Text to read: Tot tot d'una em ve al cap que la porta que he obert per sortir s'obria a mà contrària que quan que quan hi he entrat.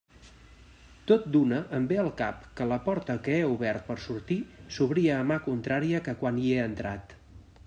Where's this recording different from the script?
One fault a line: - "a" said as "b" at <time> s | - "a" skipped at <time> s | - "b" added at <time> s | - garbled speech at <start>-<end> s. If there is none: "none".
- "tot" skipped at 1.3 s
- "que quan" skipped at 6.5 s